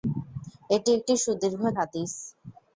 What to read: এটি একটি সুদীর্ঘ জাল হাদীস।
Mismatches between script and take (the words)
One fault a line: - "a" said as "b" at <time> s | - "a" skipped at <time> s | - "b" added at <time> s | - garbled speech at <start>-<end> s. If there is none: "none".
- "জাল" skipped at 1.6 s